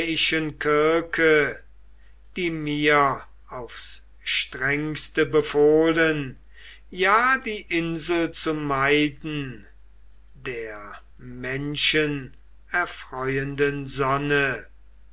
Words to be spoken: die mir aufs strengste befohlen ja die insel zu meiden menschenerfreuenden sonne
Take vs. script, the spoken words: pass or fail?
fail